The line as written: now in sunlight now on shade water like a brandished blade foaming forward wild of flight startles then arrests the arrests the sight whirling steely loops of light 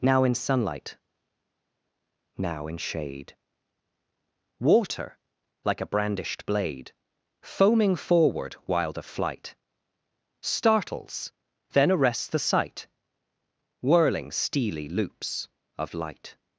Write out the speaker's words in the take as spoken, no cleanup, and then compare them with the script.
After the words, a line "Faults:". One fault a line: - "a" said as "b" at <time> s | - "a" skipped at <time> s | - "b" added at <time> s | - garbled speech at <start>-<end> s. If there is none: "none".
now in sunlight now in shade water like a brandished blade foaming forward wild of flight startles then arrests the sight whirling steely loops of light
Faults:
- "on" said as "in" at 2.7 s
- "arrests the" skipped at 12.4 s